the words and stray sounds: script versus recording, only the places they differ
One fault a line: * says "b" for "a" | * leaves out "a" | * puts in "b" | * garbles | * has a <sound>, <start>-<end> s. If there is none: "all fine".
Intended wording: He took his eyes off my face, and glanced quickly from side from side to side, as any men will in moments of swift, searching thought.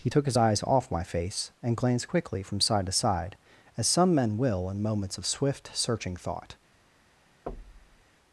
* leaves out "from side"
* says "some" for "any"
* has a thud, 7.5-8.0 s